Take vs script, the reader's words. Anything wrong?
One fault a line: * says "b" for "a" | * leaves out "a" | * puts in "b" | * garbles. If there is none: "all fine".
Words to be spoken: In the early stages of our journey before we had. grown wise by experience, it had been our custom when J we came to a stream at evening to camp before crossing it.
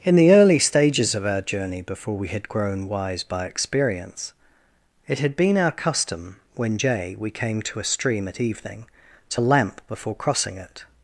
* says "lamp" for "camp"